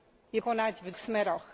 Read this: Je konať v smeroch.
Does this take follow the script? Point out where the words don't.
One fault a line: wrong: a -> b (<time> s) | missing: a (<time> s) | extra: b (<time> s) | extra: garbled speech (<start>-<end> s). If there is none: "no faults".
no faults